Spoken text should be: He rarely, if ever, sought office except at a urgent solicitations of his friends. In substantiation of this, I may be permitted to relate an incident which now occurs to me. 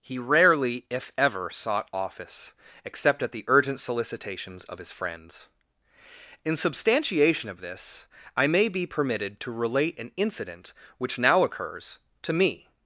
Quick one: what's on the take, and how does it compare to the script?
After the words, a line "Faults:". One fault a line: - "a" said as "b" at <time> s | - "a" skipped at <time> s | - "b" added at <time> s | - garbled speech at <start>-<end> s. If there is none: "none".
He rarely, if ever, sought office except at the urgent solicitations of his friends. In substantiation of this, I may be permitted to relate an incident which now occurs to me.
Faults:
- "a" said as "the" at 3.3 s